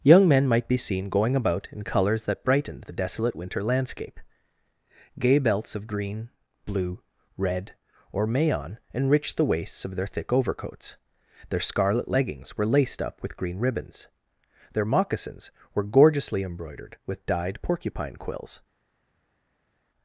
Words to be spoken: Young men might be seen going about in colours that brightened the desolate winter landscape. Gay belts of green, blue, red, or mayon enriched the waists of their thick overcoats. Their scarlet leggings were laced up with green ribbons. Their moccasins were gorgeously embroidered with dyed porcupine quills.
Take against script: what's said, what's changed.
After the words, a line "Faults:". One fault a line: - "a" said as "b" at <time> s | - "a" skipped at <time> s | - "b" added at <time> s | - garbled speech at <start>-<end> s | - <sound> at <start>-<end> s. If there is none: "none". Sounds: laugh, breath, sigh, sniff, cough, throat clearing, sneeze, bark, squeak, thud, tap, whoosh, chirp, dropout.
Young men might be seen going about in colours that brightened the desolate winter landscape. Gay belts of green, blue, red, or mayon enriched the waists of their thick overcoats. Their scarlet leggings were laced up with green ribbons. Their moccasins were gorgeously embroidered with dyed porcupine quills.
Faults:
none